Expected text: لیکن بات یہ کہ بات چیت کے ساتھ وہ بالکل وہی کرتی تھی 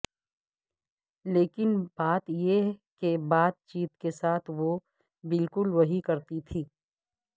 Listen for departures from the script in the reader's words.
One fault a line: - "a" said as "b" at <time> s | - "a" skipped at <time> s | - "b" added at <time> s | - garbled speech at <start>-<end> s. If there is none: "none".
none